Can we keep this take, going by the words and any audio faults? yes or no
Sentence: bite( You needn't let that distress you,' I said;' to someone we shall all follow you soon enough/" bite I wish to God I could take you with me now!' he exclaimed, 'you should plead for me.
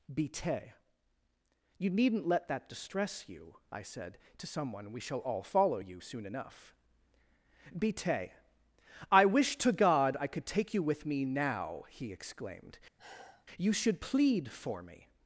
no